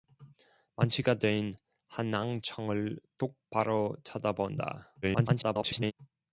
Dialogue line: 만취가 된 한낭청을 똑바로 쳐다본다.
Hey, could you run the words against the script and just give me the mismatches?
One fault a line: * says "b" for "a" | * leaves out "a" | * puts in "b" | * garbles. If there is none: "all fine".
* garbles